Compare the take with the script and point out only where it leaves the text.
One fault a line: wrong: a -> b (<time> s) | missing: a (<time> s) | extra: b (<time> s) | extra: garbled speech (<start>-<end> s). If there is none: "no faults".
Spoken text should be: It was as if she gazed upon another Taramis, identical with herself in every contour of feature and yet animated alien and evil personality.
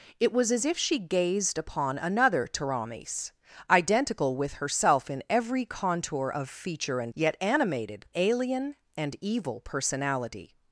no faults